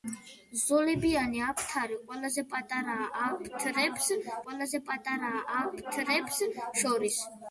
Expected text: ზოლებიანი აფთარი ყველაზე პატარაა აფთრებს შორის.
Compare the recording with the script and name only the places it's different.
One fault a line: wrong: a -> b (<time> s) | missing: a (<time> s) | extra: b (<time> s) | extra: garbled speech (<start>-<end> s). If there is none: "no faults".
extra: ყველაზე პატარაა აფთრებს (4.4 s)